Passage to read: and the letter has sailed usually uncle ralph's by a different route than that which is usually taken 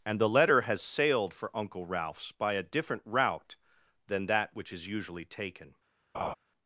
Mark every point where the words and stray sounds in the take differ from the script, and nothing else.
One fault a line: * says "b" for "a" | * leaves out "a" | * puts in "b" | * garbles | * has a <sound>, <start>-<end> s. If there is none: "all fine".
* says "for" for "usually"
* has a laugh, 6.1-6.3 s